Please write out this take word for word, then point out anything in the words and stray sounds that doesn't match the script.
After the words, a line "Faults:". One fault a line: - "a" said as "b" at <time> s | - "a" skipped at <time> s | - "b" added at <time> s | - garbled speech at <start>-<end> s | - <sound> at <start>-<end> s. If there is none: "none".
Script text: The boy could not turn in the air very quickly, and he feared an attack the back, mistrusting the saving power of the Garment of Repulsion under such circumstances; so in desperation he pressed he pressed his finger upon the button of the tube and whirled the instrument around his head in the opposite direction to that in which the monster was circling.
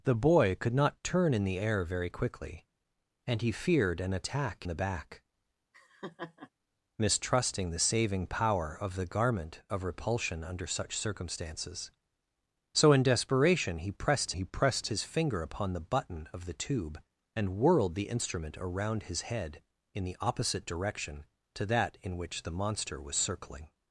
The boy could not turn in the air very quickly, and he feared an attack the back, mistrusting the saving power of the Garment of Repulsion under such circumstances; so in desperation he pressed he pressed his finger upon the button of the tube and whirled the instrument around his head in the opposite direction to that in which the monster was circling.
Faults:
- laugh at 5.7-6.5 s